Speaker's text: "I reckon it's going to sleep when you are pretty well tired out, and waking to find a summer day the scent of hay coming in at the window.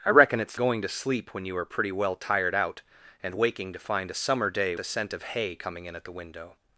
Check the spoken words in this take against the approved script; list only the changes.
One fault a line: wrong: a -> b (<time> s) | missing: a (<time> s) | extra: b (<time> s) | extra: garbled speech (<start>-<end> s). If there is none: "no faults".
no faults